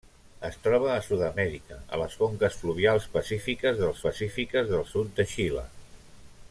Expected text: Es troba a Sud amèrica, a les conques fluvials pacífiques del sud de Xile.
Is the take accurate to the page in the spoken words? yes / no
no